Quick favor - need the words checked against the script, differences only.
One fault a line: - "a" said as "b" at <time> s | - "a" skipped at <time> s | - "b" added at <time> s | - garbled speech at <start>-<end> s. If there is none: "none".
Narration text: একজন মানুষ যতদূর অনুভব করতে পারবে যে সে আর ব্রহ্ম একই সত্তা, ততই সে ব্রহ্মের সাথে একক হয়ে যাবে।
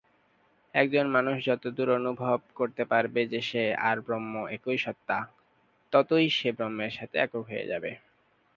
none